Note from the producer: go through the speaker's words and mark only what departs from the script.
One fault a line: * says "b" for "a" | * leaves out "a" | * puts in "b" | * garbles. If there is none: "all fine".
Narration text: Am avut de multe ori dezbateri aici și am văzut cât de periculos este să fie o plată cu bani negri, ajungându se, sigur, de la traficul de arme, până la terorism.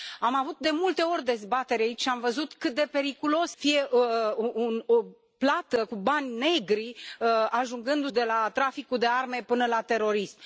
* leaves out "este să"
* leaves out "se sigur"